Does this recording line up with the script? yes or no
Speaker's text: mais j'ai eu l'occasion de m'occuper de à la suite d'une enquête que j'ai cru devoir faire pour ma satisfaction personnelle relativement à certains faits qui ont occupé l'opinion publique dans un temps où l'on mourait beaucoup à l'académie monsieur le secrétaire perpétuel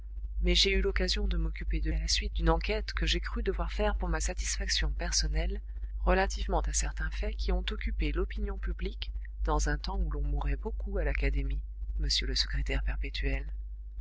yes